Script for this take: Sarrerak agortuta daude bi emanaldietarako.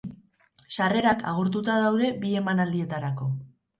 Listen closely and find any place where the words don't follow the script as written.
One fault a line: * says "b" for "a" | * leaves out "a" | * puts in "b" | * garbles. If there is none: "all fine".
all fine